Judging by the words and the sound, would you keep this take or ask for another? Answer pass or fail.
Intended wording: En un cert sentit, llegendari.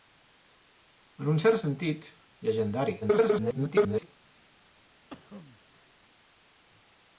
fail